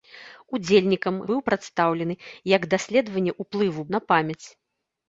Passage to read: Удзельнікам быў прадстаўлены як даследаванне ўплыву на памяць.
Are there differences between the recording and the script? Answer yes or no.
no